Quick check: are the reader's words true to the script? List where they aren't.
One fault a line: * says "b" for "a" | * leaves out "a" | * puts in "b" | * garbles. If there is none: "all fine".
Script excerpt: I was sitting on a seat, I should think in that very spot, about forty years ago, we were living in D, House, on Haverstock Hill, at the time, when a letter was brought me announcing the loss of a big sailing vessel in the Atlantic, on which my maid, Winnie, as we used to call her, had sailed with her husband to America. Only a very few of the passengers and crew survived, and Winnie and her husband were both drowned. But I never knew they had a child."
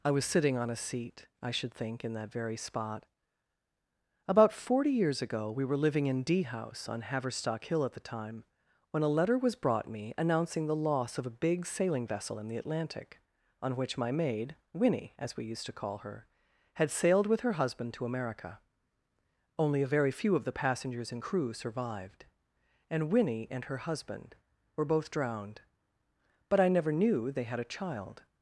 all fine